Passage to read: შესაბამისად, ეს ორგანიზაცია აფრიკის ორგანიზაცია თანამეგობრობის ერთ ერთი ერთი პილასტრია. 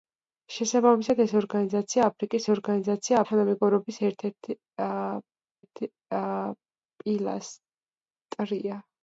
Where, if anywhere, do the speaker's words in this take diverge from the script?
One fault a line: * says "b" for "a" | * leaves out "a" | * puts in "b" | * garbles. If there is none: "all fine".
all fine